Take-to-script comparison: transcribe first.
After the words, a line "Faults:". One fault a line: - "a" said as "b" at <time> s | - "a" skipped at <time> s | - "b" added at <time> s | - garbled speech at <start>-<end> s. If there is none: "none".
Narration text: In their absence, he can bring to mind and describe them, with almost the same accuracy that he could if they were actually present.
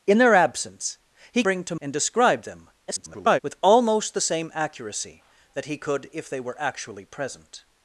In their absence, he bring to and describe them, [garbled] with almost the same accuracy that he could if they were actually present.
Faults:
- "can" skipped at 1.4 s
- "mind" skipped at 1.8 s
- garbled speech at 2.9-3.4 s